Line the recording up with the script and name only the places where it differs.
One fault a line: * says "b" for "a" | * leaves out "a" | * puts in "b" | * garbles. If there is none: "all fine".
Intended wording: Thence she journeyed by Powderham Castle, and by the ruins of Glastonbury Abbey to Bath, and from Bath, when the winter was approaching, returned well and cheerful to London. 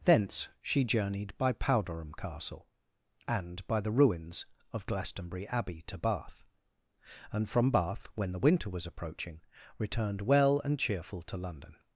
all fine